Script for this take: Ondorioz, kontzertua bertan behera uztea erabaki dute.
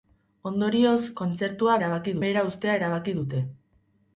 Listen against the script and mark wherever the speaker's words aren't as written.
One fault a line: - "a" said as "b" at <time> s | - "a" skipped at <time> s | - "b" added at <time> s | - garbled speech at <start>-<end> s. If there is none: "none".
- "bertan" said as "erabaki" at 1.8 s